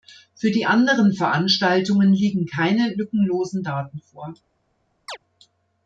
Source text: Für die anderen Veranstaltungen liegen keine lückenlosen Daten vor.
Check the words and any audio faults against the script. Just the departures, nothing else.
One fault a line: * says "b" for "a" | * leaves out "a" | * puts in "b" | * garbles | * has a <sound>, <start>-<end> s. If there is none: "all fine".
* has a chirp, 5.1-5.2 s